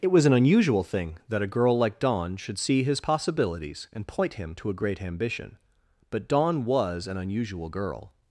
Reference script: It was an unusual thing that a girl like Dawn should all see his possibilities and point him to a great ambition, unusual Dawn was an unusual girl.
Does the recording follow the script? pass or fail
fail